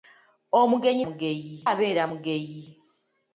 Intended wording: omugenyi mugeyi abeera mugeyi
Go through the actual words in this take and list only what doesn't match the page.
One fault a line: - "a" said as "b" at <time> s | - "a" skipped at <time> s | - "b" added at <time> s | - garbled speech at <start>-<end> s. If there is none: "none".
none